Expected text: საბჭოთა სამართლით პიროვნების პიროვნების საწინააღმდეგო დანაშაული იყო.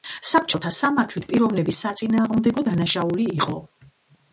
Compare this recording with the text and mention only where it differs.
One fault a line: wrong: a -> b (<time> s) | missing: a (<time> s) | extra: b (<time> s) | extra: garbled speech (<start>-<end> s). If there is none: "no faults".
missing: პიროვნების (1.9 s)